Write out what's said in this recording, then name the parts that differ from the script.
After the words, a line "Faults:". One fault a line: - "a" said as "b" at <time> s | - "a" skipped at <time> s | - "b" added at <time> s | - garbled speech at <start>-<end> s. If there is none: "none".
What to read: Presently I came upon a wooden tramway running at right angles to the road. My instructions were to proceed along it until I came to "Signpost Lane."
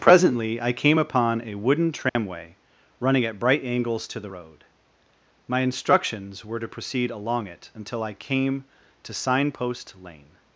Presently I came upon a wooden tramway running at bright angles to the road. My instructions were to proceed along it until I came to "Signpost Lane."
Faults:
- "right" said as "bright" at 3.4 s